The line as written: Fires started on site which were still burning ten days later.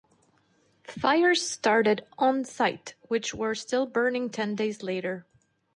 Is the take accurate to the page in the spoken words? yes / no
yes